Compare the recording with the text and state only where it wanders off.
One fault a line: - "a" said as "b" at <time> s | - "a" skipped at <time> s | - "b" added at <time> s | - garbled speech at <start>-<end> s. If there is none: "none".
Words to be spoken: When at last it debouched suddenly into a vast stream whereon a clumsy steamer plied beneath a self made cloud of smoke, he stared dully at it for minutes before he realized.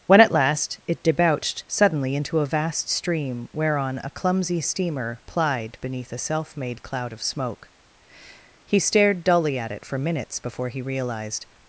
none